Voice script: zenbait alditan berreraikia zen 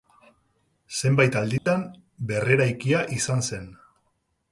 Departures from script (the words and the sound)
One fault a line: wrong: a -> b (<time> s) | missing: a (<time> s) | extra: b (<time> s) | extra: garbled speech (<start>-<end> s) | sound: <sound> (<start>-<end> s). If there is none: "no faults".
sound: dropout (1.6-1.7 s)
extra: izan (3.2 s)